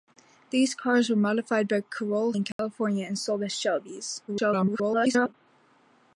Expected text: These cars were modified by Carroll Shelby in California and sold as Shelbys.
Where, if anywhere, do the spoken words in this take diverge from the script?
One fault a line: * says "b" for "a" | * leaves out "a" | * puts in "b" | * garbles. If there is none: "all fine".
* leaves out "Shelby"
* garbles